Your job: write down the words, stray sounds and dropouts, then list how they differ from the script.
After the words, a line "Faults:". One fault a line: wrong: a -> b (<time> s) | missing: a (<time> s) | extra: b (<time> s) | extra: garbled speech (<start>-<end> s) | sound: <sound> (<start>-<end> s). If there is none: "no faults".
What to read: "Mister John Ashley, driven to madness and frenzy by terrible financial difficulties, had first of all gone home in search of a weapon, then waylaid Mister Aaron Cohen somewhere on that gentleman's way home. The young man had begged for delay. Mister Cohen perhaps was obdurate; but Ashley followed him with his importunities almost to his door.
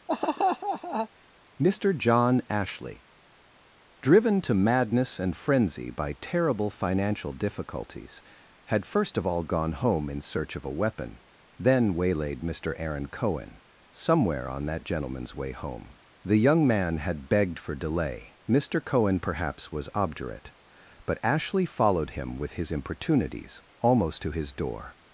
"Mister John Ashley, driven to madness and frenzy by terrible financial difficulties, had first of all gone home in search of a weapon, then waylaid Mister Aaron Cohen somewhere on that gentleman's way home. The young man had begged for delay. Mister Cohen perhaps was obdurate; but Ashley followed him with his importunities almost to his door.
Faults:
sound: laugh (0.1-1.1 s)